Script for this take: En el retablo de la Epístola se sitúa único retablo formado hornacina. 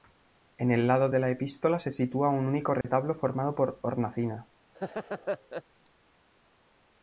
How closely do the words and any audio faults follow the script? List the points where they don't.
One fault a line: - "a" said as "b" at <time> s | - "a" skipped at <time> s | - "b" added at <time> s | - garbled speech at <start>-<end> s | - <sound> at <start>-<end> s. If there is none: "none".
- "retablo" said as "lado" at 0.9 s
- "un" added at 2.3 s
- dropout at 2.8-2.8 s
- "por" added at 3.6 s
- laugh at 4.7-5.6 s